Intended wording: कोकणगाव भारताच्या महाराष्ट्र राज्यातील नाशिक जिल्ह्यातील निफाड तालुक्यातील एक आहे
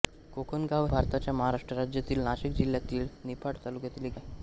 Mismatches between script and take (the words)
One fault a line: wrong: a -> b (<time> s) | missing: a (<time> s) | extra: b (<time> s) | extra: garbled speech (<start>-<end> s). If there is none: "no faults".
no faults